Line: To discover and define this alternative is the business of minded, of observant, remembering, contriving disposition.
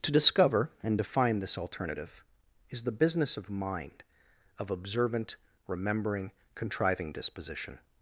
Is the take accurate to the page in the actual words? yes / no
no